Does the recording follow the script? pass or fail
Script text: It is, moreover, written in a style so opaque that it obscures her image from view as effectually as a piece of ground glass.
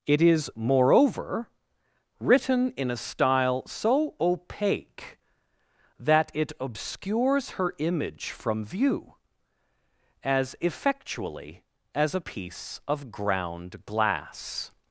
pass